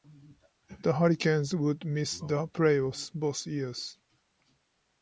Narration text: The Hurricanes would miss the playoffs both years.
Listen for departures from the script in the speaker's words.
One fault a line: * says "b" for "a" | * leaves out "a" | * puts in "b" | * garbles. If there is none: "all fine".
all fine